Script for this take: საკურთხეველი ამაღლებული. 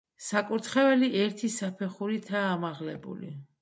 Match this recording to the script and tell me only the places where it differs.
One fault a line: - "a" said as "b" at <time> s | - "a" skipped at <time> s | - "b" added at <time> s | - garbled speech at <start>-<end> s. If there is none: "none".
- "ერთი საფეხურითაა" added at 1.2 s